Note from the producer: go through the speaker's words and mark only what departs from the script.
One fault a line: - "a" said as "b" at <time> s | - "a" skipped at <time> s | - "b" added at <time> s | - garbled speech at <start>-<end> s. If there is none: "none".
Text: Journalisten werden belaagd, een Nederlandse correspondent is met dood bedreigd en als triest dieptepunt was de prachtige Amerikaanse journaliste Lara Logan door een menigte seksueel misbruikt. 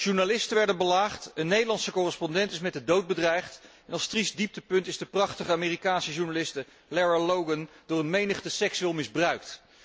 - "de" added at 2.7 s
- "was" said as "is" at 4.9 s